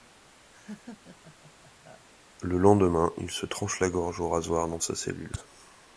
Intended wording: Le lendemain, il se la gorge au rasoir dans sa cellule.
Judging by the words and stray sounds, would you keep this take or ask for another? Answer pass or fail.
fail